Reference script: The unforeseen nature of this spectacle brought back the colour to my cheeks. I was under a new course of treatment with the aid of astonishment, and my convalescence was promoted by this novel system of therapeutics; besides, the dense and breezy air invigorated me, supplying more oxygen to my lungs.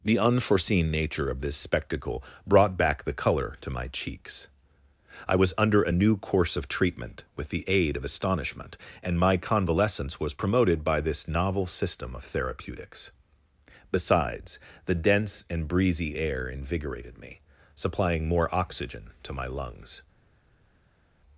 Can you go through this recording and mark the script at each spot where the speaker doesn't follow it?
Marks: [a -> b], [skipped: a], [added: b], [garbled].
The unforeseen nature of this spectacle brought back the colour to my cheeks. I was under a new course of treatment with the aid of astonishment, and my convalescence was promoted by this novel system of therapeutics; besides, the dense and breezy air invigorated me, supplying more oxygen to my lungs.